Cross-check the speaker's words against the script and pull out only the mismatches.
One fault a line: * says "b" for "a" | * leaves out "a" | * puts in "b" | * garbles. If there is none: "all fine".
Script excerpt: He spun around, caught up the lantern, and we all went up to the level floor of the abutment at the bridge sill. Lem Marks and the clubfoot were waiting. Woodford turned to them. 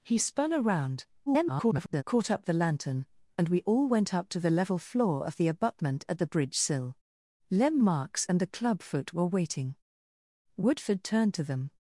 * garbles